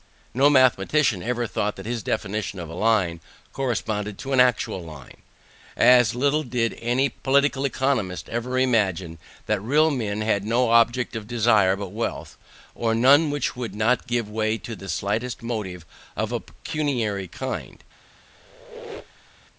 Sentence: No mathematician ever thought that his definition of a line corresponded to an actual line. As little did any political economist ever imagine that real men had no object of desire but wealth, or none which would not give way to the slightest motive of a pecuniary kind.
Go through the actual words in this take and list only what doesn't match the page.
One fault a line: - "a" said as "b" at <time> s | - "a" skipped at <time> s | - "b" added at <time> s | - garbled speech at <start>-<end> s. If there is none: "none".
none